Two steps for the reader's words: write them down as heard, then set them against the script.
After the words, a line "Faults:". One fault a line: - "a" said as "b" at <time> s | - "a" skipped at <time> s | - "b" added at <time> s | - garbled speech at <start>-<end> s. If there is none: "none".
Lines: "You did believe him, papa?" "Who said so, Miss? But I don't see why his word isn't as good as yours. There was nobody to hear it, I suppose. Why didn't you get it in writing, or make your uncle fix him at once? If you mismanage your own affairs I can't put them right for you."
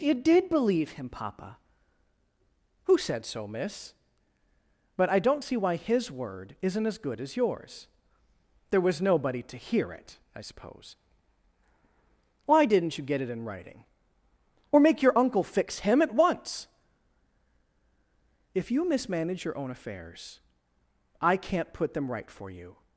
"You did believe him, papa?" "Who said so, Miss? But I don't see why his word isn't as good as yours. There was nobody to hear it, I suppose. Why didn't you get it in writing, or make your uncle fix him at once? If you mismanage your own affairs I can't put them right for you."
Faults:
none